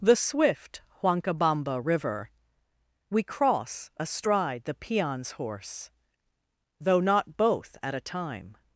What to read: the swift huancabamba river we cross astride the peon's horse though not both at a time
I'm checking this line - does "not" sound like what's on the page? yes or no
yes